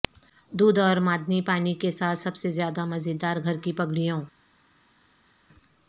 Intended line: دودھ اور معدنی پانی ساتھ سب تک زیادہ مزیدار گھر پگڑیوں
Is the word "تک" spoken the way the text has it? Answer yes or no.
no